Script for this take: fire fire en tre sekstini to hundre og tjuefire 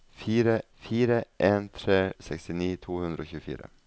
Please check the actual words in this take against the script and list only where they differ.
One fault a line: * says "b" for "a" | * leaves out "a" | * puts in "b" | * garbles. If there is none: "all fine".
all fine